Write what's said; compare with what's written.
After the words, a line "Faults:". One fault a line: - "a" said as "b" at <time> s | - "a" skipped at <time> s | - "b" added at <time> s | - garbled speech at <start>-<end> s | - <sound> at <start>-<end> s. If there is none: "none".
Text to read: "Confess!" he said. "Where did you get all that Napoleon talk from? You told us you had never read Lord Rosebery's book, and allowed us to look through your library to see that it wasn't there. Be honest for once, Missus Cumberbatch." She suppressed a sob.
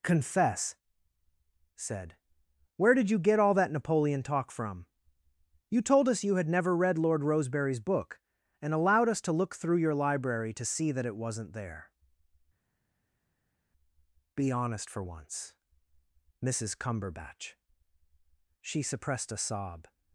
"Confess!" said. "Where did you get all that Napoleon talk from? You told us you had never read Lord Rosebery's book, and allowed us to look through your library to see that it wasn't there. Be honest for once, Missus Cumberbatch." She suppressed a sob.
Faults:
- "he" skipped at 0.8 s